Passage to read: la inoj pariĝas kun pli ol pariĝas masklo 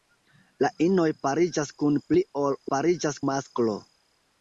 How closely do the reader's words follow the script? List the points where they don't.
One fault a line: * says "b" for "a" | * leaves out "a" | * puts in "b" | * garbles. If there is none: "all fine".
all fine